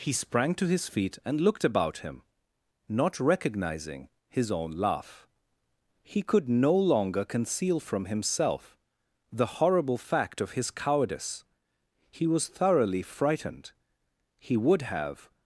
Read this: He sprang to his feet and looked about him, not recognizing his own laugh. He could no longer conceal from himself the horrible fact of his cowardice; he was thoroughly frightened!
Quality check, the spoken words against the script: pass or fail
fail